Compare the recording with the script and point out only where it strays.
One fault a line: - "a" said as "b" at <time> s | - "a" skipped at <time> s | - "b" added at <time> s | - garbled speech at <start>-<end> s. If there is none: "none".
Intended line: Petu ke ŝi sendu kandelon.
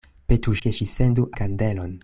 none